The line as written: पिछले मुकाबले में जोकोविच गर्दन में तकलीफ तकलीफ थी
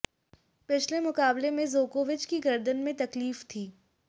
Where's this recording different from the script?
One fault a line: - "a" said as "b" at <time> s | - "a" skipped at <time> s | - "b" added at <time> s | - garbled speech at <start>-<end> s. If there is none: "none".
- "की" added at 2.2 s
- "तकलीफ" skipped at 3.4 s